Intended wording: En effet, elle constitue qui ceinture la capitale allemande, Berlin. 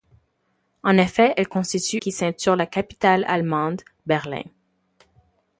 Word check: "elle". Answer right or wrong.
right